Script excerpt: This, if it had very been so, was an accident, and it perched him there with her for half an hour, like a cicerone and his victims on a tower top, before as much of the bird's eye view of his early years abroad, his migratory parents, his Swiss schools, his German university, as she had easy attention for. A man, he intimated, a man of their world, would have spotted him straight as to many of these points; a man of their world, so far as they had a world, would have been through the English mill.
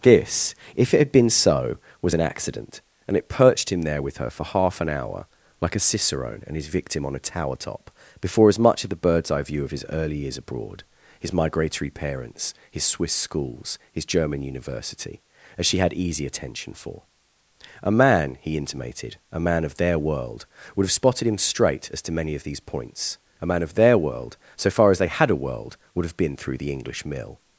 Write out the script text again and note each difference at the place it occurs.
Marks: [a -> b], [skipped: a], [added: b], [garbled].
This, if it had [skipped: very] been so, was an accident, and it perched him there with her for half an hour, like a cicerone and his [victims -> victim] on a tower top, before as much of the bird's eye view of his early years abroad, his migratory parents, his Swiss schools, his German university, as she had easy attention for. A man, he intimated, a man of their world, would have spotted him straight as to many of these points; a man of their world, so far as they had a world, would have been through the English mill.